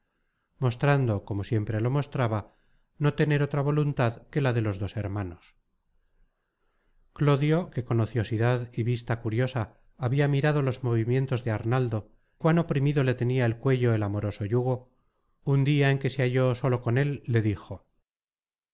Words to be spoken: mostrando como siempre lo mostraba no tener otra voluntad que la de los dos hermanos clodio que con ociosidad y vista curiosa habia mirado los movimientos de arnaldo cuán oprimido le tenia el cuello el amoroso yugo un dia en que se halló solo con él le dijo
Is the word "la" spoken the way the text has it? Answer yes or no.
yes